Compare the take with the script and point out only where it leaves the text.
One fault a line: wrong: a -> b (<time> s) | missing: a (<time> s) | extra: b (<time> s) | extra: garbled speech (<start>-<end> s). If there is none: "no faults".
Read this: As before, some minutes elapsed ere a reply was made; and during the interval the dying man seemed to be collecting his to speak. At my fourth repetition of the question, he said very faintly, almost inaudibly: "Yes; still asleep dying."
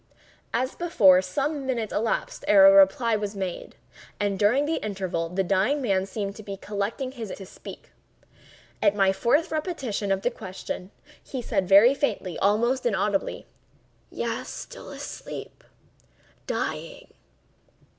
no faults